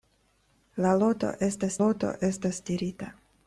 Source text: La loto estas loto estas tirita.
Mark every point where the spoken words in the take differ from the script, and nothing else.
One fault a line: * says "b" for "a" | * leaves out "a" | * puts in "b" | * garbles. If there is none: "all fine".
all fine